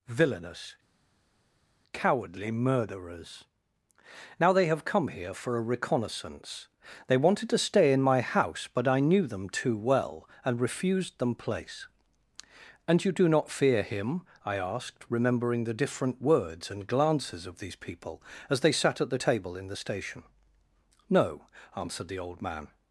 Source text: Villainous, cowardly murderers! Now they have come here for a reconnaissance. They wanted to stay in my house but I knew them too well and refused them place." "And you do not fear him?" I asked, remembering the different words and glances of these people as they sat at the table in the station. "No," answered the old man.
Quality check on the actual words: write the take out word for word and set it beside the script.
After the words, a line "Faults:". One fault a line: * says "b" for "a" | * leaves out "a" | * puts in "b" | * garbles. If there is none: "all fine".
Villainous, cowardly murderers! Now they have come here for a reconnaissance. They wanted to stay in my house but I knew them too well and refused them place." "And you do not fear him?" I asked, remembering the different words and glances of these people as they sat at the table in the station. "No," answered the old man.
Faults:
all fine